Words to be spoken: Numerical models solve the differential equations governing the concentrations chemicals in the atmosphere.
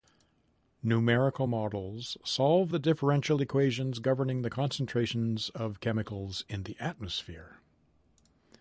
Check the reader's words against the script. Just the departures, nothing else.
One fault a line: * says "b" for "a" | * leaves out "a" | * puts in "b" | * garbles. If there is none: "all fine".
* puts in "of"